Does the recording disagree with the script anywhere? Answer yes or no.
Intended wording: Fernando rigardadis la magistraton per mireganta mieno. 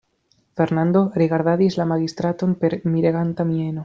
no